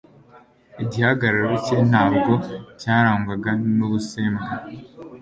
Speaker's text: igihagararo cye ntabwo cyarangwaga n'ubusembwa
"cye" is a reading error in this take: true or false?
false